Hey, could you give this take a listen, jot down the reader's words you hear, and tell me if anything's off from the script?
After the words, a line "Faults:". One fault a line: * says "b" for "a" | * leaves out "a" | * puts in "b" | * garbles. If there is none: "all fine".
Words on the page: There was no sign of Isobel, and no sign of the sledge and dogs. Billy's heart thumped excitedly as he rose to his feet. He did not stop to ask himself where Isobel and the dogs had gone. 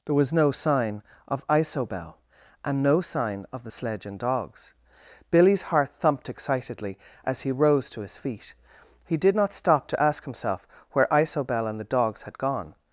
There was no sign of Isobel, and no sign of the sledge and dogs. Billy's heart thumped excitedly as he rose to his feet. He did not stop to ask himself where Isobel and the dogs had gone.
Faults:
all fine